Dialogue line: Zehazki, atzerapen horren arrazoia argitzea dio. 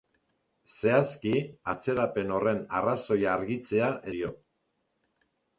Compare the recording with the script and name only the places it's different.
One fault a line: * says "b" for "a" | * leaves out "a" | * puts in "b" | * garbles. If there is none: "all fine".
all fine